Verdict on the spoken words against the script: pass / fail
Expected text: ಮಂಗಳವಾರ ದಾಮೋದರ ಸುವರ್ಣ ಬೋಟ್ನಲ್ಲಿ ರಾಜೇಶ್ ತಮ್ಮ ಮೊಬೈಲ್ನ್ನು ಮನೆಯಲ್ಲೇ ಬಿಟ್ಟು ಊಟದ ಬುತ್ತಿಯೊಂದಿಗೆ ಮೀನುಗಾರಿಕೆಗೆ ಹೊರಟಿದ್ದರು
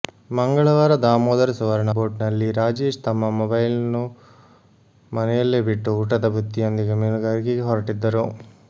pass